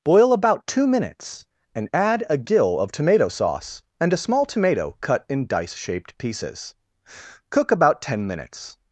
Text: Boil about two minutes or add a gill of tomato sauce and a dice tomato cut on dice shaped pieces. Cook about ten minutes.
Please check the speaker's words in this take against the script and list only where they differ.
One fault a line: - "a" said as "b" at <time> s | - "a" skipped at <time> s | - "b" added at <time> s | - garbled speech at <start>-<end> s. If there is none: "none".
- "or" said as "and" at 1.8 s
- "dice" said as "small" at 4.2 s
- "on" said as "in" at 5.3 s